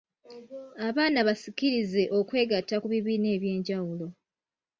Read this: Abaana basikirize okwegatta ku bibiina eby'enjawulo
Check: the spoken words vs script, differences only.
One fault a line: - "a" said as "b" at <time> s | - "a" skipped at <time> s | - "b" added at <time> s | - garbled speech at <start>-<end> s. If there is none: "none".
none